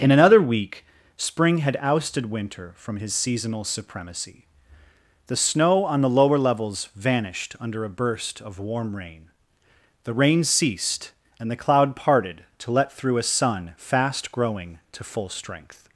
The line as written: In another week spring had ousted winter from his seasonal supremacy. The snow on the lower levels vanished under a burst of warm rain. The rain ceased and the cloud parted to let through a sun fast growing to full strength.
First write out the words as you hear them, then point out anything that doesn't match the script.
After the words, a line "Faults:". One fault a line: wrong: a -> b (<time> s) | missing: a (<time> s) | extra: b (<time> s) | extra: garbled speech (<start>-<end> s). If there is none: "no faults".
In another week spring had ousted winter from his seasonal supremacy. The snow on the lower levels vanished under a burst of warm rain. The rain ceased and the cloud parted to let through a sun fast growing to full strength.
Faults:
no faults